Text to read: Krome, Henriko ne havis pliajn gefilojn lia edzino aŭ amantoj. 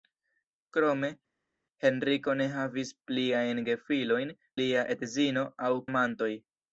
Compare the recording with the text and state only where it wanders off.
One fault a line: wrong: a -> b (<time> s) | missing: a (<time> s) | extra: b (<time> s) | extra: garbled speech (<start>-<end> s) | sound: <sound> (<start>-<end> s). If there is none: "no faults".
no faults